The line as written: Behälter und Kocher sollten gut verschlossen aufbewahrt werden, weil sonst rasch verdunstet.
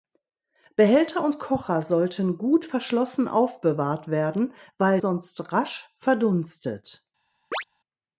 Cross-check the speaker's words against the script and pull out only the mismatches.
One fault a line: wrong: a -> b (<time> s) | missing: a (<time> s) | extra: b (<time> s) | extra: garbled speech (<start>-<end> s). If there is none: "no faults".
no faults